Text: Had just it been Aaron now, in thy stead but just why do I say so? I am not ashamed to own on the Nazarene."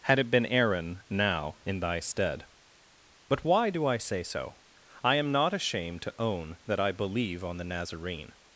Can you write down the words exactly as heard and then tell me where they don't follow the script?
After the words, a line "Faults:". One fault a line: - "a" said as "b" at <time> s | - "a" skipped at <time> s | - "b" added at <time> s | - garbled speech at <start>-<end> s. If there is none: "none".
Had it been Aaron now, in thy stead but why do I say so? I am not ashamed to own that I believe on the Nazarene."
Faults:
- "just" skipped at 0.2 s
- "just" skipped at 3.5 s
- "that I believe" added at 6.7 s